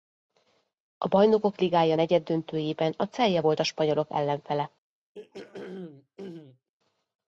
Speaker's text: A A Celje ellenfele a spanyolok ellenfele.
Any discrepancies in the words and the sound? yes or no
yes